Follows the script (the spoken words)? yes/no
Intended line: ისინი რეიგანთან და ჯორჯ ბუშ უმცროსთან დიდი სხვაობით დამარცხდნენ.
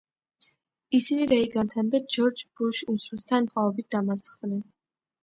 no